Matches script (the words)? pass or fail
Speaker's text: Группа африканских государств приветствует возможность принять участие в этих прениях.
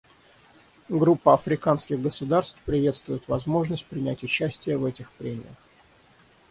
pass